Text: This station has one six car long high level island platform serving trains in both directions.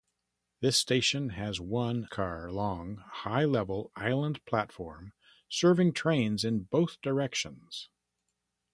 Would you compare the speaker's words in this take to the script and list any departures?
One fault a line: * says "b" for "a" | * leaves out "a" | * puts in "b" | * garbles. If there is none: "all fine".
* leaves out "six"